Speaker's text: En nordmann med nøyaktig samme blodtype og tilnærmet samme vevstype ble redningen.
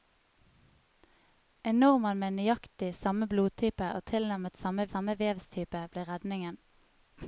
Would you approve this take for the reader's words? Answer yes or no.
no